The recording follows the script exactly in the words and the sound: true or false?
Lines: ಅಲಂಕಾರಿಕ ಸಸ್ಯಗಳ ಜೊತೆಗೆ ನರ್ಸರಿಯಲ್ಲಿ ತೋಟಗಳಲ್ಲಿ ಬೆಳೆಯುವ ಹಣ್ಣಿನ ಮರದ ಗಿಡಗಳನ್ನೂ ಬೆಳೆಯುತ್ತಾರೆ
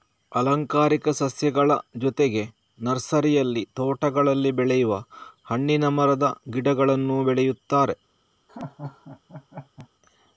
false